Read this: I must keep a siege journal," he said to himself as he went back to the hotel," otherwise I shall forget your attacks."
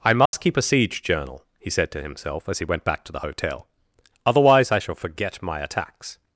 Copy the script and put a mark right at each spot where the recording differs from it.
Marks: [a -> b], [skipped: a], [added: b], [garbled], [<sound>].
I must [dropout] keep a siege journal," he said to himself as he went back to the hotel," otherwise I shall forget [your -> my] attacks."